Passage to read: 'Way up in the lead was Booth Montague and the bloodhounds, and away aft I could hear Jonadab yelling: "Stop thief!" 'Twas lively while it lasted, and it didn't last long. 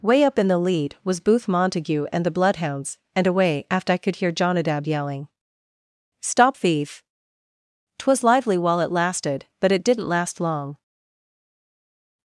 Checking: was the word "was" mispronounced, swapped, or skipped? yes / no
no